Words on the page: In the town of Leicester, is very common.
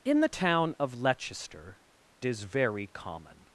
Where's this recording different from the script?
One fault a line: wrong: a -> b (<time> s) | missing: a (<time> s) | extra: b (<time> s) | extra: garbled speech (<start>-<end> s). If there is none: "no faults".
no faults